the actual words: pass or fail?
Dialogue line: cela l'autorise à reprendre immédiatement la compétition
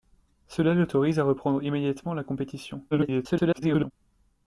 fail